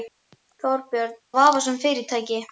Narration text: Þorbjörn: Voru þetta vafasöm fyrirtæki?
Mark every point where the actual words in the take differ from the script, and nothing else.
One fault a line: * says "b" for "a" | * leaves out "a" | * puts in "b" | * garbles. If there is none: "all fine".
* leaves out "Voru þetta"